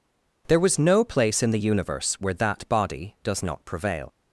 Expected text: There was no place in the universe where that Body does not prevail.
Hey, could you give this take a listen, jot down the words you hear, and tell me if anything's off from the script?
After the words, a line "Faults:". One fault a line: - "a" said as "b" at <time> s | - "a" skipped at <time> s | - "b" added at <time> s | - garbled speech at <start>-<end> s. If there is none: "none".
There was no place in the universe where that Body does not prevail.
Faults:
none